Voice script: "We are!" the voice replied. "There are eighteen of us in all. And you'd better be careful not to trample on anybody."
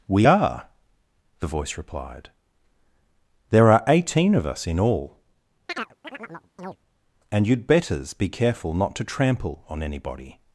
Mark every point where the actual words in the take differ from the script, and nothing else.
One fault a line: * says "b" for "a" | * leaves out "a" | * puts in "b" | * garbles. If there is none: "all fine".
* says "betters" for "better"